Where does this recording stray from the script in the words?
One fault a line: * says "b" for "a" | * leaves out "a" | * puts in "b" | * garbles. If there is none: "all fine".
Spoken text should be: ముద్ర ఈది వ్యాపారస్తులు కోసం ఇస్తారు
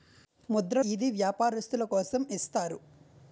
all fine